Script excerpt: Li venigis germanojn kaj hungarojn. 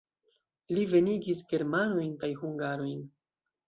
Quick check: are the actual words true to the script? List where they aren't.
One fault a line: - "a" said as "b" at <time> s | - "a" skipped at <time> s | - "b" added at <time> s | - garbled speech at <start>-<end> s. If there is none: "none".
none